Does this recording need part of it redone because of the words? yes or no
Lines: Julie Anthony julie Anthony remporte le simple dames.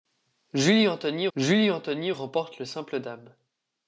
no